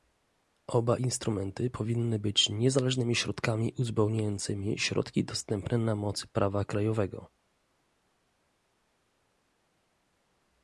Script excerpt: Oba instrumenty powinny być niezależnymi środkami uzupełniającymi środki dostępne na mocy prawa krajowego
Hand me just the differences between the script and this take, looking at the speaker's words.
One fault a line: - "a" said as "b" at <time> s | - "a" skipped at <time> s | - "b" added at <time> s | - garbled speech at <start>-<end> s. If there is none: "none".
none